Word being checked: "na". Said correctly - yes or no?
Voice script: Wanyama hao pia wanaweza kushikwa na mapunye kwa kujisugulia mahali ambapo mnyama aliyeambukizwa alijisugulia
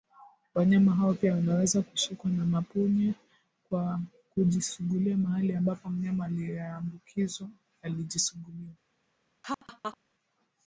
yes